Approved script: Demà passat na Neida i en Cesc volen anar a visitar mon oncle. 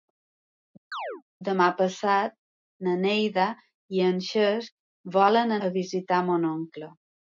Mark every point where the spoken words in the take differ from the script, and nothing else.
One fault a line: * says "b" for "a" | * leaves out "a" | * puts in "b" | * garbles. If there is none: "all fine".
* leaves out "anar"